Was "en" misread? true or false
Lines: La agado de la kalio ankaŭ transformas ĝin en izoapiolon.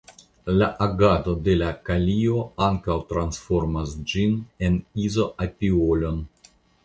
false